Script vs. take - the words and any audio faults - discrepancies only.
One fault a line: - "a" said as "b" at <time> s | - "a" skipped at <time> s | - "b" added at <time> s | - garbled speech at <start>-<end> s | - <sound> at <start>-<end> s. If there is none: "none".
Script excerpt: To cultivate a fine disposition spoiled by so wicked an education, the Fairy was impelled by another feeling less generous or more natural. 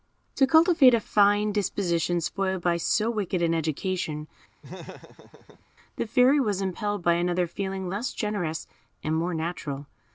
- laugh at 4.6-5.7 s
- "or" said as "and" at 9.0 s